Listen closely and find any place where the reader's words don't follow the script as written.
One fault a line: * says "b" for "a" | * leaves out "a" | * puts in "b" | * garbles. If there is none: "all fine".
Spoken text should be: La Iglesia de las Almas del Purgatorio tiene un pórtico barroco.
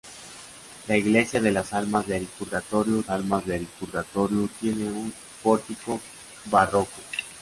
* puts in "Almas del Purgatorio"